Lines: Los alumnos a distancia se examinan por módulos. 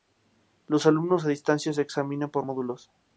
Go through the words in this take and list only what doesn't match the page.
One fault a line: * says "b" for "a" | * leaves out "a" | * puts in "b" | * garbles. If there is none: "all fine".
all fine